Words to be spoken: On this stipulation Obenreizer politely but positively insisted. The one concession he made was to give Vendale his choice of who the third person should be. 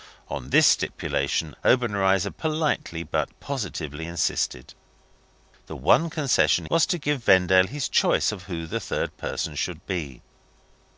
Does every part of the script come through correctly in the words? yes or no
no